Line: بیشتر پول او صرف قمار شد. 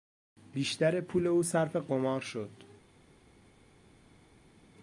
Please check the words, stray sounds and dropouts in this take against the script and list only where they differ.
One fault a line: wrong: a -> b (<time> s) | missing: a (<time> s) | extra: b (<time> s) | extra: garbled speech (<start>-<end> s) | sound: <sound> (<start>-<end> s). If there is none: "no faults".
no faults